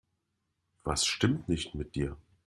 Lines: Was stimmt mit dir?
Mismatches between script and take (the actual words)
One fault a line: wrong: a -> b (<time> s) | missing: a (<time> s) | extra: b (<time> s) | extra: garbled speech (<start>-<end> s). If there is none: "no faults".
extra: nicht (1.5 s)